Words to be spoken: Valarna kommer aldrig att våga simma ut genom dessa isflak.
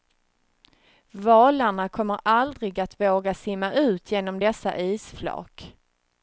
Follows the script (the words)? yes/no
yes